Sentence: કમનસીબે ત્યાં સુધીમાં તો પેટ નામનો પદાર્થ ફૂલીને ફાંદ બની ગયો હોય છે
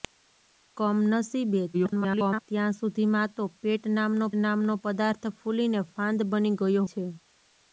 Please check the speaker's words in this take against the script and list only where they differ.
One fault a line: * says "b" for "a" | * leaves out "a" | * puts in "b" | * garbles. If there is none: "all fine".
* garbles
* puts in "નામનો"
* leaves out "હોય"